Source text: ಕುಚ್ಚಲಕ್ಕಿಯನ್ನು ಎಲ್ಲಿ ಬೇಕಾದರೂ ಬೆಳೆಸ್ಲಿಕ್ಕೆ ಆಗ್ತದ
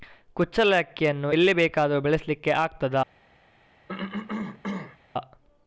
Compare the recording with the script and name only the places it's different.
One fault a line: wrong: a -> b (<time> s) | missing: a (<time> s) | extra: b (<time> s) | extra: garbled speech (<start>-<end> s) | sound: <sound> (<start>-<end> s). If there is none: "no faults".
sound: cough (3.9-5.0 s)